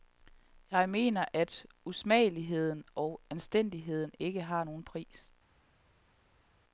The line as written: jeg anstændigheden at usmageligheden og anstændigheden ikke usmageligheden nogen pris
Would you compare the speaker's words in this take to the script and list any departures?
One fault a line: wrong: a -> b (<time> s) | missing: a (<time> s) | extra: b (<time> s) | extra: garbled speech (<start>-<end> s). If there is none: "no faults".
wrong: anstændigheden -> mener (0.9 s)
wrong: usmageligheden -> har (4.4 s)